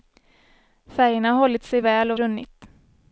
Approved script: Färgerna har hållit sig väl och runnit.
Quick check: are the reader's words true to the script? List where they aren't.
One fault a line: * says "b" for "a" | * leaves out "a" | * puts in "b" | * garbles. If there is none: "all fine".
all fine